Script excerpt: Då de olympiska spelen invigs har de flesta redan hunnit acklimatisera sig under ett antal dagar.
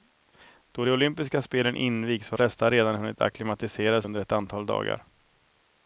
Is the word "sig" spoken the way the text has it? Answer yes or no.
no